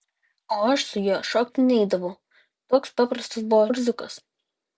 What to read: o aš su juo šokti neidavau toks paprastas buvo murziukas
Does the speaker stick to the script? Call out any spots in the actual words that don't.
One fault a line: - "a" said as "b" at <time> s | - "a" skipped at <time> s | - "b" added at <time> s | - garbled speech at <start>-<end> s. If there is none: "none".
none